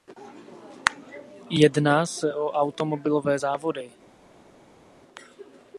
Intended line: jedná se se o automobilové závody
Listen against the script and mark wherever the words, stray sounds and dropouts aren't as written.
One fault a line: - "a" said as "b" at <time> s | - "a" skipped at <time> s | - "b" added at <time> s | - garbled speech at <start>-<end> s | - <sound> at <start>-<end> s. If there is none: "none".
- "se" skipped at 2.3 s